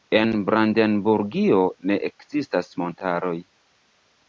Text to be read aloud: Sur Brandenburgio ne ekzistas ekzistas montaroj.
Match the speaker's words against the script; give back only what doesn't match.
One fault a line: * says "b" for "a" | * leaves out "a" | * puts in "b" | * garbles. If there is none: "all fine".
* says "En" for "Sur"
* leaves out "ekzistas"